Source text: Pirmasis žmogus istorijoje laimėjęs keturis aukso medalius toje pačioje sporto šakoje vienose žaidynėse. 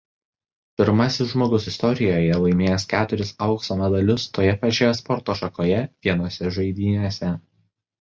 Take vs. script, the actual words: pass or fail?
pass